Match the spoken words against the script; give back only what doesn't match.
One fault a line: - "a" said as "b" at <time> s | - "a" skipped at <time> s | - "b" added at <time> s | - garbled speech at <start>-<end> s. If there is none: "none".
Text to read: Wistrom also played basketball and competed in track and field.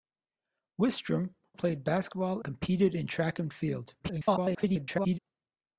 - "also" skipped at 1.4 s
- "and" skipped at 2.4 s
- garbled speech at 4.0-5.2 s